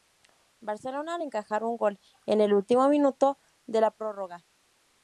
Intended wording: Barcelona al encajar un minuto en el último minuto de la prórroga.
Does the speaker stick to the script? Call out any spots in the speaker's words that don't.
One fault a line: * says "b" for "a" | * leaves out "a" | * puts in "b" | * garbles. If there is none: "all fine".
* says "gol" for "minuto"